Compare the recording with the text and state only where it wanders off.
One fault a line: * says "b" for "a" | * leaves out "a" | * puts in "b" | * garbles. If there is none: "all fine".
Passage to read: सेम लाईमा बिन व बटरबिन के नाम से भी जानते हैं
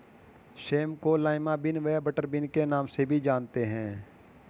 * puts in "को"